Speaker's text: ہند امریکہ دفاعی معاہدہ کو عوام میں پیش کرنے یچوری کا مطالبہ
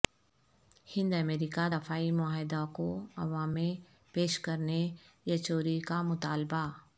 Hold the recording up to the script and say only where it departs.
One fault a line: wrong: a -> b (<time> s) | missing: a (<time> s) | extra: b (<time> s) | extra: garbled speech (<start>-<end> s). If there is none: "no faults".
no faults